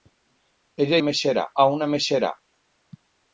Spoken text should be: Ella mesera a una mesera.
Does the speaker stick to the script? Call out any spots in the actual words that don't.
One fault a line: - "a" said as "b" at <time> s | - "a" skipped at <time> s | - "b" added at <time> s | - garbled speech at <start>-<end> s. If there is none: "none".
none